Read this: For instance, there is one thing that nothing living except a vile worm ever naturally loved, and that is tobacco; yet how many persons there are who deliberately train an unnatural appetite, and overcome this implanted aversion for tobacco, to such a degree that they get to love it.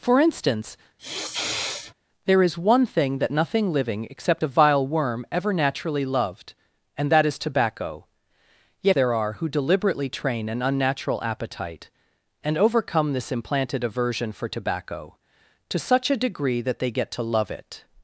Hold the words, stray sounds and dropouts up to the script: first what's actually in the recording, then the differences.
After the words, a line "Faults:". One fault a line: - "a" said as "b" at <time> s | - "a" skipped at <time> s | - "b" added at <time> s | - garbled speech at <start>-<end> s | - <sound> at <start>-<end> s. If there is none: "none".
For instance, there is one thing that nothing living except a vile worm ever naturally loved, and that is tobacco; yet there are who deliberately train an unnatural appetite, and overcome this implanted aversion for tobacco, to such a degree that they get to love it.
Faults:
- sniff at 1.0-1.9 s
- "how many persons" skipped at 9.0 s